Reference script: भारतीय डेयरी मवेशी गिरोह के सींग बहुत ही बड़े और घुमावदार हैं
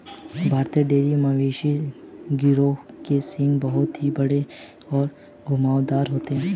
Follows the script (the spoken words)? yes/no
no